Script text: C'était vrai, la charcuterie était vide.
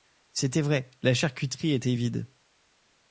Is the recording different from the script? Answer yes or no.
no